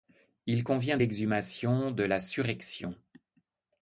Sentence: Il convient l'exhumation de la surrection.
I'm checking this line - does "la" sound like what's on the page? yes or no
yes